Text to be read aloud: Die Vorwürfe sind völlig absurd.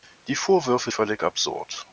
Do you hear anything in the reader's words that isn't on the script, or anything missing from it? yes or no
yes